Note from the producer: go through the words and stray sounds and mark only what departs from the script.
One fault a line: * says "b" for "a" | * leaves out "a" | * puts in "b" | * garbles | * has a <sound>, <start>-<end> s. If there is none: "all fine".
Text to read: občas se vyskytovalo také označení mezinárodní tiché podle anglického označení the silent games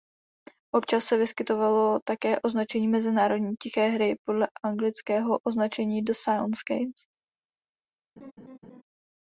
* puts in "hry"
* has a laugh, 8.2-8.8 s